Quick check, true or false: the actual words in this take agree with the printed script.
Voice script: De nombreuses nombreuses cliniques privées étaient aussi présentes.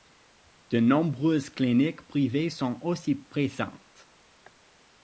false